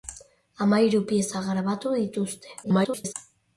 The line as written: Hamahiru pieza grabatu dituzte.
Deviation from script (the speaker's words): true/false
true